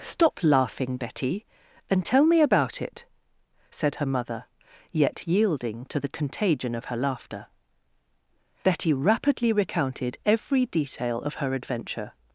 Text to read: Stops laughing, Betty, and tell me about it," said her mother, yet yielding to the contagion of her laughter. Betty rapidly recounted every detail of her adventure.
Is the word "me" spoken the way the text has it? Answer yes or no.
yes